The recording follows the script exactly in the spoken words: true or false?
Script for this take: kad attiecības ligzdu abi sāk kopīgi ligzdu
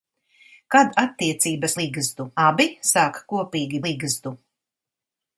true